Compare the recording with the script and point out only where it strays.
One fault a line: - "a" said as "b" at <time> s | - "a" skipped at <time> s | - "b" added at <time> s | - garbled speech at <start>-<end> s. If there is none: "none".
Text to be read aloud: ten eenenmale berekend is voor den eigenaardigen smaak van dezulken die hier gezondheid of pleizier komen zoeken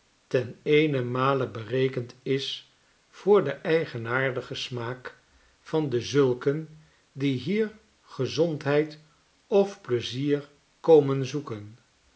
none